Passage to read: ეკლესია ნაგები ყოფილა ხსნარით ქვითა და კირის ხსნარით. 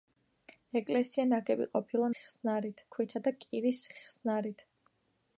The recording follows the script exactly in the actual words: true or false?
true